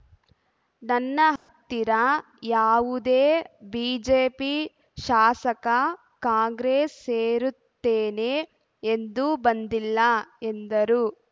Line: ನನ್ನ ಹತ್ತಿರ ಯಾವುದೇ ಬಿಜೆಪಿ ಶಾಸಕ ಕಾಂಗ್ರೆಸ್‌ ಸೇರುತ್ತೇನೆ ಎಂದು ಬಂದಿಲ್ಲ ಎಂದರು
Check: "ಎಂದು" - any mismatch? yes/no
no